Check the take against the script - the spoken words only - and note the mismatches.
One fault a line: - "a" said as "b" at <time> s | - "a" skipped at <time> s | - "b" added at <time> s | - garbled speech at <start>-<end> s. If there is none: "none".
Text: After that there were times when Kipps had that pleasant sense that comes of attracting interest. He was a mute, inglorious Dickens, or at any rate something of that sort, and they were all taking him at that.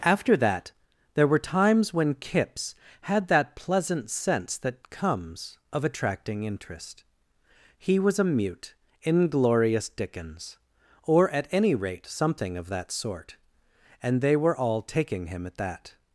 none